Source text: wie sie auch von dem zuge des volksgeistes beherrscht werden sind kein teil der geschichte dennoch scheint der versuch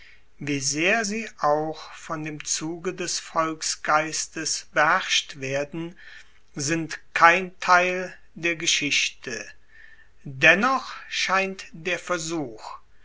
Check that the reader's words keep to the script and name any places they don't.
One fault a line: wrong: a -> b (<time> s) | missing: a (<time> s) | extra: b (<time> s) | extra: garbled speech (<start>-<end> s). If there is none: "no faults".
extra: sehr (0.6 s)